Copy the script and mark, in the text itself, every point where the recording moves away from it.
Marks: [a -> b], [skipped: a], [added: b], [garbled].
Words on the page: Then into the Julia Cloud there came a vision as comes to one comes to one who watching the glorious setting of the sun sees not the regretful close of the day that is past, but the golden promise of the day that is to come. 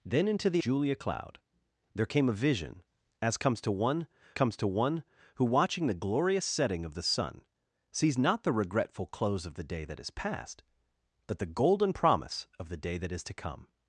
Then into the Julia Cloud there came a vision as comes to one comes to one who watching the glorious setting of the sun sees not the regretful close of the day that is past, but the golden promise of the day that is to come.